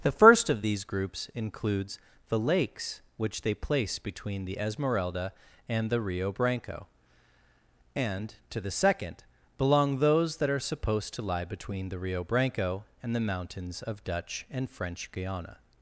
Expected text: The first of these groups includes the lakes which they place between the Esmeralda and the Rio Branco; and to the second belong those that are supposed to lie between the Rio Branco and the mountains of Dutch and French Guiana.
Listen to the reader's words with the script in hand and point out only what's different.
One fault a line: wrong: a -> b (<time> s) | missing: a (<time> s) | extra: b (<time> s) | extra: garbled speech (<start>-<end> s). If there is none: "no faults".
no faults